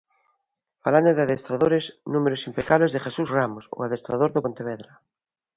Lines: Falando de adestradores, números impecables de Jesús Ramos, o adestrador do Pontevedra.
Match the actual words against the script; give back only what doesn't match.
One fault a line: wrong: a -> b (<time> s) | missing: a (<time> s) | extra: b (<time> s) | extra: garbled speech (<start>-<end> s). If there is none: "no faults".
no faults